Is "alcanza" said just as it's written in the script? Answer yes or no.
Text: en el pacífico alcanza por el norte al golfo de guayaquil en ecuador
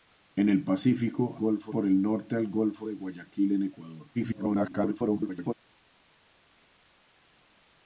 no